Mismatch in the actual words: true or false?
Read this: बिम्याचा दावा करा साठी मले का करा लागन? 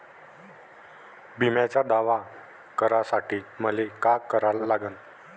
false